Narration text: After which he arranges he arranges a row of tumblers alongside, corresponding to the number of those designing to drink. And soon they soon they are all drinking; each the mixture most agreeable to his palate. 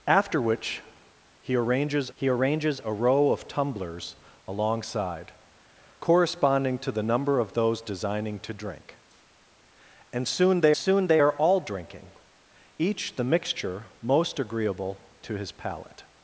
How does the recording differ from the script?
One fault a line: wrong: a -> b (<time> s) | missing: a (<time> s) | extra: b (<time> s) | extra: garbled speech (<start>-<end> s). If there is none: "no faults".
no faults